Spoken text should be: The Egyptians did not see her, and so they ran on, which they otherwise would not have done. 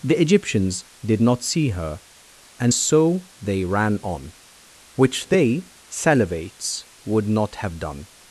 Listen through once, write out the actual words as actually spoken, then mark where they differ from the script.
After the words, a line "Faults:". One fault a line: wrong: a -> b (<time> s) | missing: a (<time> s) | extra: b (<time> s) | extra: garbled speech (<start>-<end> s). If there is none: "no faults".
The Egyptians did not see her, and so they ran on, which they salivates would not have done.
Faults:
wrong: otherwise -> salivates (5.9 s)